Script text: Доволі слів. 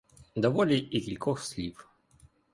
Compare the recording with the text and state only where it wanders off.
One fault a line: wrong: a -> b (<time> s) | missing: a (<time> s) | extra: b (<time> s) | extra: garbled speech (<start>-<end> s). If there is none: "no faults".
extra: і кількох (0.8 s)